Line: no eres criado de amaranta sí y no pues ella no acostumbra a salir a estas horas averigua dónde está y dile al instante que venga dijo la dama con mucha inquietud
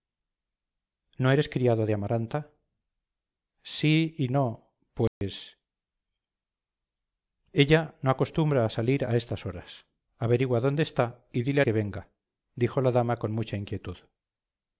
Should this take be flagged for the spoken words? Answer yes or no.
yes